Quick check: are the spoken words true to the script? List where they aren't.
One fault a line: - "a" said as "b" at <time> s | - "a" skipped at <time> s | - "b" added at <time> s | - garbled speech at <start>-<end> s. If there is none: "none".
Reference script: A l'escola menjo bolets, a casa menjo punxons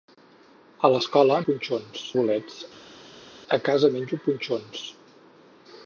- "menjo" said as "punxons" at 1.5 s